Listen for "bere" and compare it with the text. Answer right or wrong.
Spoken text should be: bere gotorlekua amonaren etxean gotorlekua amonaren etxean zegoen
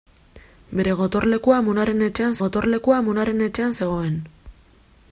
right